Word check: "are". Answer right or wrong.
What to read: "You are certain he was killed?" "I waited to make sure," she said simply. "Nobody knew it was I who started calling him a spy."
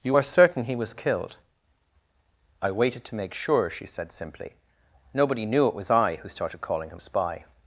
right